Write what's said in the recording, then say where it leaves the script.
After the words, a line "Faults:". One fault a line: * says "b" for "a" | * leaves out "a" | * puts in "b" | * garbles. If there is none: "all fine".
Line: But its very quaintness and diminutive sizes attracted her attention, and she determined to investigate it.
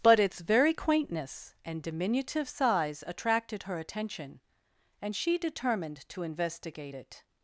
But its very quaintness and diminutive size attracted her attention, and she determined to investigate it.
Faults:
* says "size" for "sizes"